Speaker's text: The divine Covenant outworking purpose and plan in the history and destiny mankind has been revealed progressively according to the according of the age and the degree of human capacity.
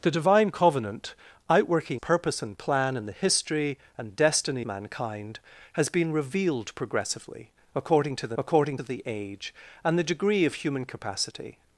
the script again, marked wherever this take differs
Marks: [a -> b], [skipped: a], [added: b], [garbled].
The divine Covenant outworking purpose and plan in the history and destiny mankind has been revealed progressively according to the according of the age and the degree of human capacity.